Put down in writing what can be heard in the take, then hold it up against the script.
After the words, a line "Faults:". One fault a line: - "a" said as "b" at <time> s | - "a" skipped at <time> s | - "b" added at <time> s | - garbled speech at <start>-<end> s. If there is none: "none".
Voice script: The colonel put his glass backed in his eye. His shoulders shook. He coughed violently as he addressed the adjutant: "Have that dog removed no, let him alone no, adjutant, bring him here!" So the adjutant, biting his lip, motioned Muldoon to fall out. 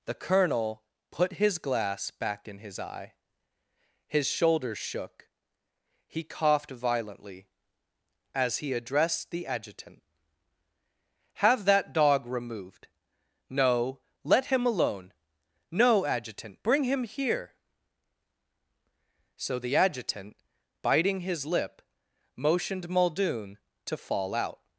The colonel put his glass back in his eye. His shoulders shook. He coughed violently as he addressed the adjutant: "Have that dog removed no, let him alone no, adjutant, bring him here!" So the adjutant, biting his lip, motioned Muldoon to fall out.
Faults:
- "backed" said as "back" at 2.1 s